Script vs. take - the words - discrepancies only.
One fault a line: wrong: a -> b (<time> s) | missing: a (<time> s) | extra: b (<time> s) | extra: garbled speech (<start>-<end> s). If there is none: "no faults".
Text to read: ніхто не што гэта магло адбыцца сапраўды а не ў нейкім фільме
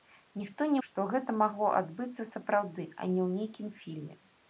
no faults